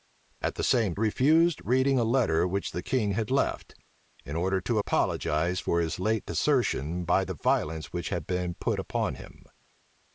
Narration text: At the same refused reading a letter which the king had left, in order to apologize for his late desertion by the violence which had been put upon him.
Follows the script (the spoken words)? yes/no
yes